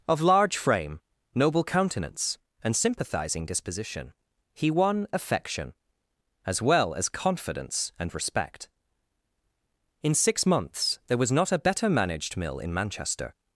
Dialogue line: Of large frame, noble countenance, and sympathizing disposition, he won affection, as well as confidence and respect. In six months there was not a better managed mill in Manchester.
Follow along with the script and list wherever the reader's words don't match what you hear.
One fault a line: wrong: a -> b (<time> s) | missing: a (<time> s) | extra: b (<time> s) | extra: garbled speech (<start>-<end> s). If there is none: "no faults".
no faults